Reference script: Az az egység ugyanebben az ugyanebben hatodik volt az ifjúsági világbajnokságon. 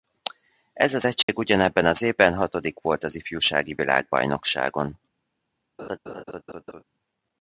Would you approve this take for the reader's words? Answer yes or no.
no